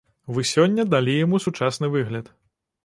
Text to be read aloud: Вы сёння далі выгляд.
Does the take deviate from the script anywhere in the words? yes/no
yes